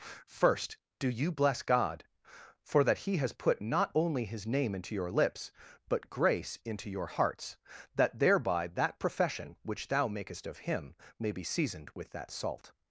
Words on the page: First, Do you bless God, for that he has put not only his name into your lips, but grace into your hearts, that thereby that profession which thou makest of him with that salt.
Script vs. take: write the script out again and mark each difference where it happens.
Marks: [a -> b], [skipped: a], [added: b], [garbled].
First, Do you bless God, for that he has put not only his name into your lips, but grace into your hearts, that thereby that profession which thou makest of him [added: may be seasoned] with that salt.